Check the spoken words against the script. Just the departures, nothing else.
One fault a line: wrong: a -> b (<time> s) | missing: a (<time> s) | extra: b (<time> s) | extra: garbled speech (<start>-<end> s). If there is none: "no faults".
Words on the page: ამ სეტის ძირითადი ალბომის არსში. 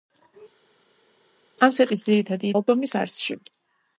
no faults